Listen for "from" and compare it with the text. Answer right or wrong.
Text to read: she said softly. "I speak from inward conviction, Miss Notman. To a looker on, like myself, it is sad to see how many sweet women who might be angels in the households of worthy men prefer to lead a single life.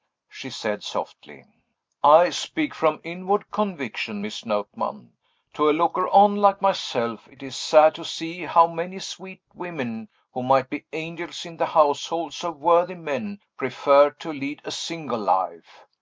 right